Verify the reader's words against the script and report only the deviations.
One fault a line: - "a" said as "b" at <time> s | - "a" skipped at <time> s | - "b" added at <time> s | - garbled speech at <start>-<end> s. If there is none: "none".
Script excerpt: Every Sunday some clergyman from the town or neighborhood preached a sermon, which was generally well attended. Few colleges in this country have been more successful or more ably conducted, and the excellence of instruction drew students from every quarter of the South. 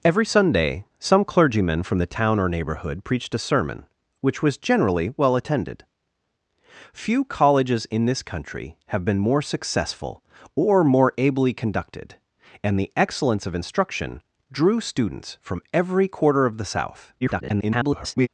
- garbled speech at 17.2-18.3 s